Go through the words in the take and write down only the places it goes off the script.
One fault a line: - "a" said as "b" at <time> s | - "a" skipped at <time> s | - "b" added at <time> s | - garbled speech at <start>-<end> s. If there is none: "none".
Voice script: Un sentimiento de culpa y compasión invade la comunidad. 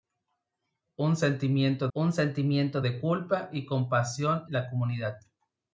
- "un sentimiento" added at 1.9 s
- "invade" skipped at 4.4 s